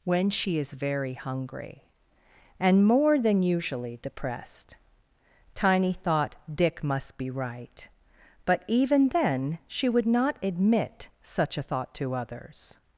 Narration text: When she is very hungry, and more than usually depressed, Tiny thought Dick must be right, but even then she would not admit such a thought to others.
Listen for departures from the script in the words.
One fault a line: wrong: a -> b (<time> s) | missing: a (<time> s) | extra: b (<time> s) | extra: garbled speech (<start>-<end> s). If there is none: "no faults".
no faults